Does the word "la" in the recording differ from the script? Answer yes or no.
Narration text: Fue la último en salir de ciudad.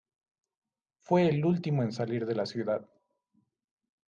yes